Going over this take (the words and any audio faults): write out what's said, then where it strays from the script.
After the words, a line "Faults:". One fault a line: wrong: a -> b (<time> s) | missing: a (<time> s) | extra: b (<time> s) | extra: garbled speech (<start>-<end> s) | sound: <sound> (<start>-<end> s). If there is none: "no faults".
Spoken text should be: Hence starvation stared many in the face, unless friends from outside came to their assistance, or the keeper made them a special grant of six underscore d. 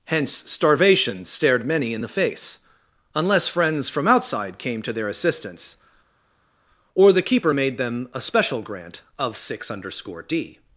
Hence starvation stared many in the face, unless friends from outside came to their assistance, or the keeper made them a special grant of six underscore d.
Faults:
no faults